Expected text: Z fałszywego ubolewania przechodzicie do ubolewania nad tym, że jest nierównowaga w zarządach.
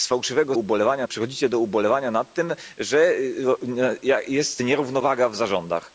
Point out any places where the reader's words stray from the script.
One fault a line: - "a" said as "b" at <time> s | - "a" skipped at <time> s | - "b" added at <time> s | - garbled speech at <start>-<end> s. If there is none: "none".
none